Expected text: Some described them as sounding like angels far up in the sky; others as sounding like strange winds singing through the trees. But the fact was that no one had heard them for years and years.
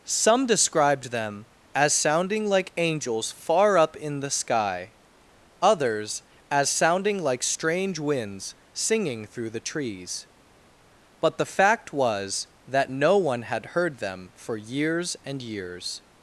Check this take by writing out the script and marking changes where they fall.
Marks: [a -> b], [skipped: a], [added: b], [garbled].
Some described them as sounding like angels far up in the sky; others as sounding like strange winds singing through the trees. But the fact was that no one had heard them for years and years.